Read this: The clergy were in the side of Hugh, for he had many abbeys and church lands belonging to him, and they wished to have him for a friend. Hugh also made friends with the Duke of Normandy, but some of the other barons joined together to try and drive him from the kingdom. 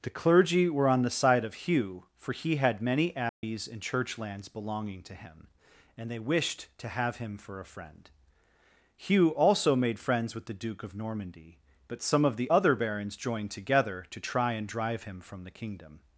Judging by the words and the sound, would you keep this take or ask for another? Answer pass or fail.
fail